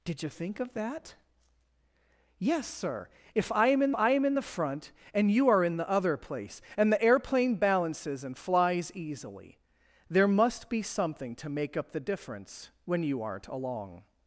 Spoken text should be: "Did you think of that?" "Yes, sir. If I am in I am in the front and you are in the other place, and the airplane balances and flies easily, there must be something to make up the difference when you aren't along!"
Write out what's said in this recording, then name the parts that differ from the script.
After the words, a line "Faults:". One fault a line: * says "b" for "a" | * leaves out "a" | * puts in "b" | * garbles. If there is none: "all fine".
"Did you think of that?" "Yes, sir. If I am in I am in the front and you are in the other place, and the airplane balances and flies easily, there must be something to make up the difference when you aren't along!"
Faults:
all fine